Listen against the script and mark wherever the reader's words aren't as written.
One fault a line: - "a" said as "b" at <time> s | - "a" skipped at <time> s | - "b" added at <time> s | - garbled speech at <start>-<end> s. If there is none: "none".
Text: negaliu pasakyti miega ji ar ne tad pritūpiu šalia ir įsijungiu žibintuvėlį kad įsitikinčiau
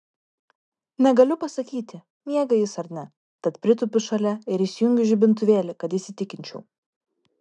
- "ji" said as "jis" at 2.6 s